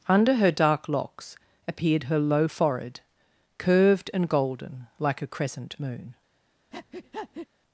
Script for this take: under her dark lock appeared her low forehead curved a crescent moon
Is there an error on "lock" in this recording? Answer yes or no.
yes